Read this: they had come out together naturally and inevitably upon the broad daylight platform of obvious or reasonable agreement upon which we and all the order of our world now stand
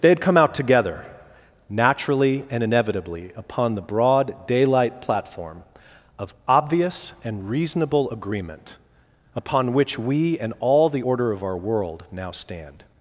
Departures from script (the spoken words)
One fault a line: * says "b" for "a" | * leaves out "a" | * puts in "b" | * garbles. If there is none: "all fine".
* says "and" for "or"